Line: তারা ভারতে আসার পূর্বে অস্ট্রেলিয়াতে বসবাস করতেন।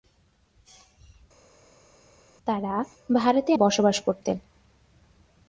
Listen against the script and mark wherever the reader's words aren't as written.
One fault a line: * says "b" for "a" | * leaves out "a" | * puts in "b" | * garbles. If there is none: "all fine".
* leaves out "আসার পূর্বে অস্ট্রেলিয়াতে"